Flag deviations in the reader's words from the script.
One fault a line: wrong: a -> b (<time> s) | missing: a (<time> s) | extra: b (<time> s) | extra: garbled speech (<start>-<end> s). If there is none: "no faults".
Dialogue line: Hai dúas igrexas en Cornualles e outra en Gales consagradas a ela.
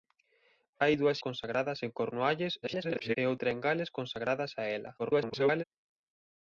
wrong: igrexas -> consagradas (1.3 s)
extra: garbled speech (2.6-3.2 s)
extra: garbled speech (5.0-5.6 s)